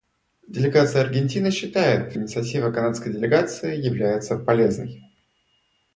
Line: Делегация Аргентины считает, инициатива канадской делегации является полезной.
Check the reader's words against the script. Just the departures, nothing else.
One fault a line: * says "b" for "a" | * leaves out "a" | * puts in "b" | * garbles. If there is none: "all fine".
all fine